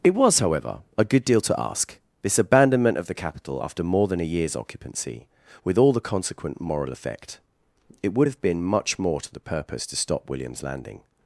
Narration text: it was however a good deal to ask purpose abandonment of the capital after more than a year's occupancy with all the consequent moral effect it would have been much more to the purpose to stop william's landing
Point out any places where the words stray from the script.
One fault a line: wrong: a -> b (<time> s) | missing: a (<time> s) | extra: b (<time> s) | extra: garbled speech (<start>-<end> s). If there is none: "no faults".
wrong: purpose -> this (2.2 s)